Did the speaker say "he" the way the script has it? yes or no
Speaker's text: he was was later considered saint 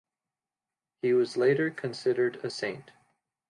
yes